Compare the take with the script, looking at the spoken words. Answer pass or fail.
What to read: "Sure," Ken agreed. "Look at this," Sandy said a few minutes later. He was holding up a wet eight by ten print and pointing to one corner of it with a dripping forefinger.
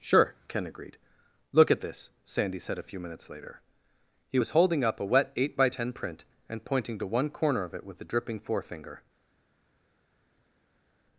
pass